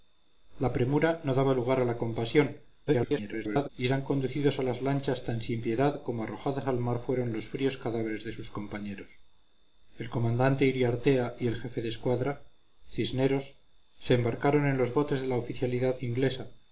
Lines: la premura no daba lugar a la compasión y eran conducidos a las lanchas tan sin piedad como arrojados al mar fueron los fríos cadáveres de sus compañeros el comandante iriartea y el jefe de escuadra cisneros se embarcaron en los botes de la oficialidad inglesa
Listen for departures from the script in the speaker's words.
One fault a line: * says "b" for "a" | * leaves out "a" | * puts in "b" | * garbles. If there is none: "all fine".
* garbles